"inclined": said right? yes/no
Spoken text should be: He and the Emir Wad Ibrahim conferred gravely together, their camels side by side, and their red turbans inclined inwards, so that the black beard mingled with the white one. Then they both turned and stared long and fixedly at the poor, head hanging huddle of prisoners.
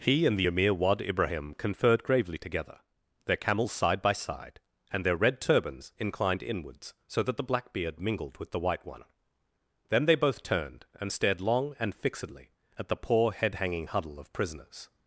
yes